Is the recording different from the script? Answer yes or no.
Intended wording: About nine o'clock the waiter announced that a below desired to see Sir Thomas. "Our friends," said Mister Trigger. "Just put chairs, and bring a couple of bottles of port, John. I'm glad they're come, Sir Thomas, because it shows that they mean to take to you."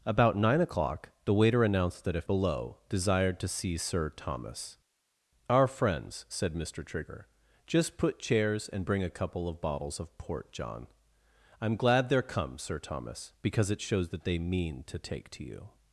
no